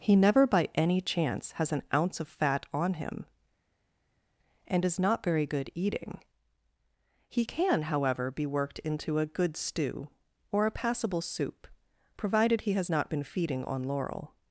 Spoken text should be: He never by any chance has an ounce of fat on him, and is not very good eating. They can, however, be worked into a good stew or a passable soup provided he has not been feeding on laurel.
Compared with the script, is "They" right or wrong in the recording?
wrong